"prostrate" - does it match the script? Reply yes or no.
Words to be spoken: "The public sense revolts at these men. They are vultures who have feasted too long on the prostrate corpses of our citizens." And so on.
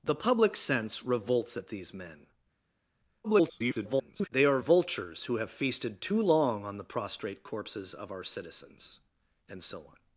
yes